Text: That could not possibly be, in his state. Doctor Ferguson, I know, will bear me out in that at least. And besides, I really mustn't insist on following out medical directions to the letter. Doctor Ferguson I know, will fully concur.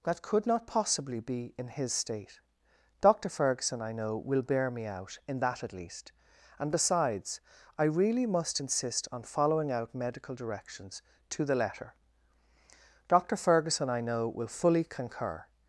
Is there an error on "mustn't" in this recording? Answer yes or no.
yes